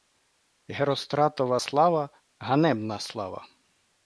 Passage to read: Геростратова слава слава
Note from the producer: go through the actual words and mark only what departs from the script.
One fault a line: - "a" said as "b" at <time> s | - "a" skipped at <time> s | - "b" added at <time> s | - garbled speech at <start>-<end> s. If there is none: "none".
- "ганебна" added at 2.5 s